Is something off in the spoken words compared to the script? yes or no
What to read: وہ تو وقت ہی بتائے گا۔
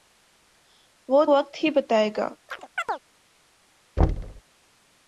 yes